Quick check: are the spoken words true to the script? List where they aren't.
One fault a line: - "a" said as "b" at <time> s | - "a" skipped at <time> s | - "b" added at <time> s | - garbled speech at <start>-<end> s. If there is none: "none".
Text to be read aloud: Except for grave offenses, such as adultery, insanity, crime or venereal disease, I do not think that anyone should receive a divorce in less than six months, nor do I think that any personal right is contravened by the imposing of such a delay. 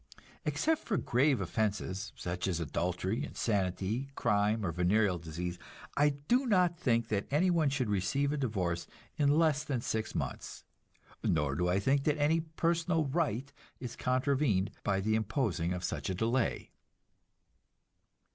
none